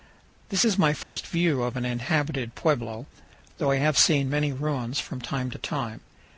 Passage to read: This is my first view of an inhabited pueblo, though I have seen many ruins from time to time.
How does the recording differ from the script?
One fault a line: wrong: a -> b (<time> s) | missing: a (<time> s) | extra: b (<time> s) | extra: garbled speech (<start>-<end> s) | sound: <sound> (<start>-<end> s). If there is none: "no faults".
sound: dropout (1.0-1.2 s)